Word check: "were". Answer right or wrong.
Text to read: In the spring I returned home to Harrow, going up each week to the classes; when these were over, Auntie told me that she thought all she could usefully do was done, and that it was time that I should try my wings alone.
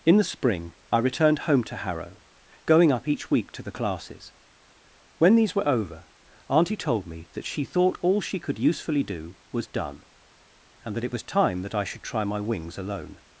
right